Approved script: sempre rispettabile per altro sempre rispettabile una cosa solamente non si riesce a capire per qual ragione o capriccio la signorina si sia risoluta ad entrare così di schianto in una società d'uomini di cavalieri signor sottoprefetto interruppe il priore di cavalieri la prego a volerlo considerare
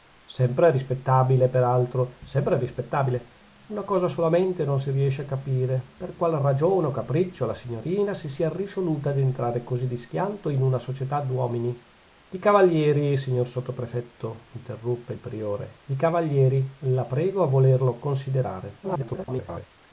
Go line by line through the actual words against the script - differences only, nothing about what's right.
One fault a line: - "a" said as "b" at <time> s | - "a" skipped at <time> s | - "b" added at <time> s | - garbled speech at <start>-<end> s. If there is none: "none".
- garbled speech at 18.8-19.7 s